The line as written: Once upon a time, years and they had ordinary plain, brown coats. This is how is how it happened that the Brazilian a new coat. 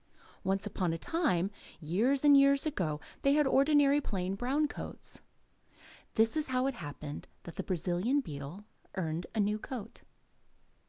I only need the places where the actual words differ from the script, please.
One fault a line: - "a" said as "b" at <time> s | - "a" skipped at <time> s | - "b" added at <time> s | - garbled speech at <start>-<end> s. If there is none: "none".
- "years ago" added at 2.4 s
- "is how" skipped at 6.7 s
- "beetle earned" added at 8.2 s